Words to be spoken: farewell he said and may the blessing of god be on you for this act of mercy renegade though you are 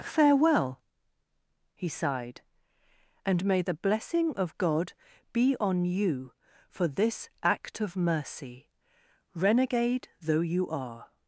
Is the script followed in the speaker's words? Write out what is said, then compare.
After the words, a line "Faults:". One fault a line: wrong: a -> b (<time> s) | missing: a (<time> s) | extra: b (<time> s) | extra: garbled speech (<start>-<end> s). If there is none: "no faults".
farewell he sighed and may the blessing of god be on you for this act of mercy renegade though you are
Faults:
wrong: said -> sighed (1.9 s)